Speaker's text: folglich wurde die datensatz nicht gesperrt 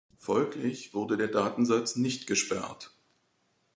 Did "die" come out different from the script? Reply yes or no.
yes